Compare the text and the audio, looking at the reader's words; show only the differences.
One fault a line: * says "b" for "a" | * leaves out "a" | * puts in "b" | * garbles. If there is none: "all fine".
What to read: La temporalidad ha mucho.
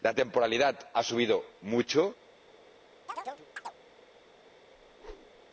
* puts in "subido"